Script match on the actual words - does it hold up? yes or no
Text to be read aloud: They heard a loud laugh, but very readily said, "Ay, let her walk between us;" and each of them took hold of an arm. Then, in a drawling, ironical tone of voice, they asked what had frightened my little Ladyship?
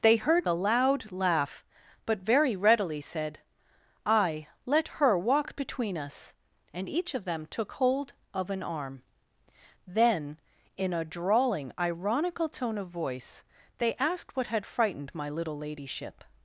yes